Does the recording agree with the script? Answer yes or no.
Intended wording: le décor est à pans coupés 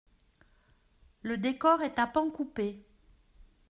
yes